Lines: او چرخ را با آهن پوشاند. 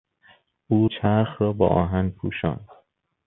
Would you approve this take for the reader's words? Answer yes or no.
yes